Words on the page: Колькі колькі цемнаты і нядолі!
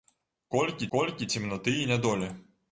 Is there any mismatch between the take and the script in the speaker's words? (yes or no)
no